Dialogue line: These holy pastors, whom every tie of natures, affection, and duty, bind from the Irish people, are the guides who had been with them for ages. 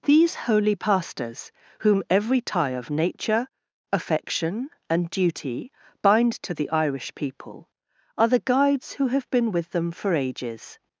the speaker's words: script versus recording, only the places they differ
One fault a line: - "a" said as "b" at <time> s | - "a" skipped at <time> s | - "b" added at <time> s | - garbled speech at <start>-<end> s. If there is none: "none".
- "natures" said as "nature" at 2.9 s
- "from" said as "to" at 6.4 s
- "had" said as "have" at 9.1 s